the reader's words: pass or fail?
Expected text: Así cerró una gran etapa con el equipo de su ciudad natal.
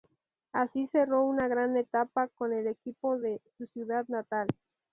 pass